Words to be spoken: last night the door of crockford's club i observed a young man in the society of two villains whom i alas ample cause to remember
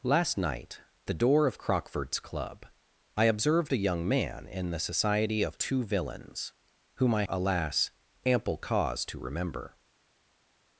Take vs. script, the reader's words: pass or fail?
pass